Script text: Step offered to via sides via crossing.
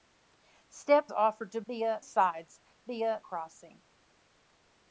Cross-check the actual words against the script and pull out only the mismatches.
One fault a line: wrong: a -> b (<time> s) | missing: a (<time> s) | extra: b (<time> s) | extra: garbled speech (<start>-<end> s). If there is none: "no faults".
no faults